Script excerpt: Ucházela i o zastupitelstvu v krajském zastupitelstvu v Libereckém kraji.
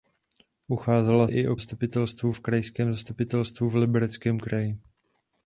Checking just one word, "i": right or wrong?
right